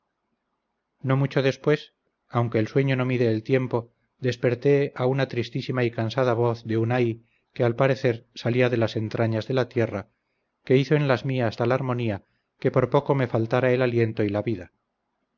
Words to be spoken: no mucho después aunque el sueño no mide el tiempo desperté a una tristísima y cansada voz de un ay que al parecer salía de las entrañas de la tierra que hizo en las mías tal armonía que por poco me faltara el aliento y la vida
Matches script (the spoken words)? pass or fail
pass